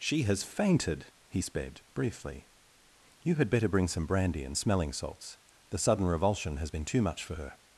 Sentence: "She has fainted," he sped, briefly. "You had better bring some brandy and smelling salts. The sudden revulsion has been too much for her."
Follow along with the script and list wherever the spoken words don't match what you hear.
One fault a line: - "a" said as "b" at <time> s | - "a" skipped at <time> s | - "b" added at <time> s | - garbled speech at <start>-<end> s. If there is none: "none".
none